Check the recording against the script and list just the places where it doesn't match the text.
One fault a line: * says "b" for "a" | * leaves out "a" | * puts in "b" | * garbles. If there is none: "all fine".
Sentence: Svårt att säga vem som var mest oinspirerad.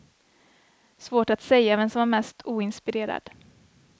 all fine